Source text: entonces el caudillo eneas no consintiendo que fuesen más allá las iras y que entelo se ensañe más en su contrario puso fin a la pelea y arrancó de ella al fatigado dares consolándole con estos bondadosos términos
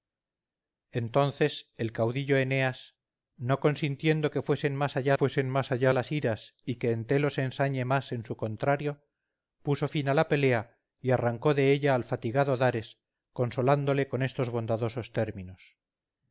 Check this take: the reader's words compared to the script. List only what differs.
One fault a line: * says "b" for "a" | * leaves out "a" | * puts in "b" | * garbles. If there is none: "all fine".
* puts in "fuesen más allá"